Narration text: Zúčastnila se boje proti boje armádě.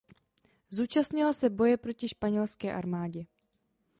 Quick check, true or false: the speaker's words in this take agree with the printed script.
false